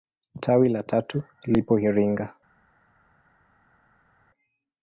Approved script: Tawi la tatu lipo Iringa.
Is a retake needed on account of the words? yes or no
no